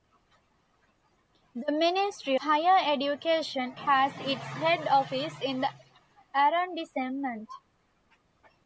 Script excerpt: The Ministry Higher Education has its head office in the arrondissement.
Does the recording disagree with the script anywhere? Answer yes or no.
no